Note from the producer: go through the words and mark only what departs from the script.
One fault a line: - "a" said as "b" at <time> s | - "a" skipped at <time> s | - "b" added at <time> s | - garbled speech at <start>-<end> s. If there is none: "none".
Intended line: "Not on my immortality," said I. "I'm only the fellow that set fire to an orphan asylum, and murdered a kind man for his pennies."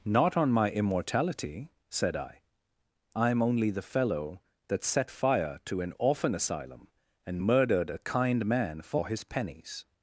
none